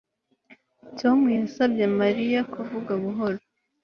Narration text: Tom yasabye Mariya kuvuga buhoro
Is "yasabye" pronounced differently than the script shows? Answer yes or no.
no